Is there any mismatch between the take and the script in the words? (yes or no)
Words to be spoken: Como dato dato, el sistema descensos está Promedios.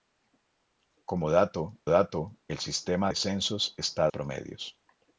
no